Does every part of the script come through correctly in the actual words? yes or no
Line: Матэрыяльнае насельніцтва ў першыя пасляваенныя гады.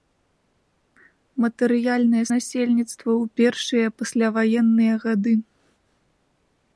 yes